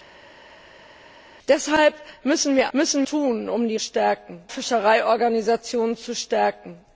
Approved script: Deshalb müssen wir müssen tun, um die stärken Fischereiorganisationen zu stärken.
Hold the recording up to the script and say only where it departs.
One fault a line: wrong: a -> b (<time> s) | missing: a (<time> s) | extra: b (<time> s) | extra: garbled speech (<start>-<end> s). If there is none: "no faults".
no faults